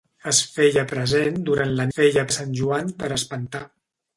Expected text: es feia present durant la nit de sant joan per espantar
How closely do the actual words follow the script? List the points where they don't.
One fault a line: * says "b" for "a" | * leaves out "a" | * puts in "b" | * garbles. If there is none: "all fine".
* says "feia" for "nit"